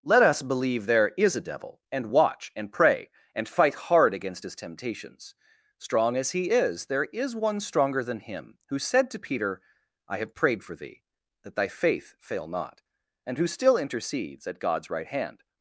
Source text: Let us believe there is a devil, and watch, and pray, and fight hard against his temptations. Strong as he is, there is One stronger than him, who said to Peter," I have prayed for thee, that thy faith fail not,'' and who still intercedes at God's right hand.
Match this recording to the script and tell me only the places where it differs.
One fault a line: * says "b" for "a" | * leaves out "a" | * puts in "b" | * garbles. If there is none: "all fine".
all fine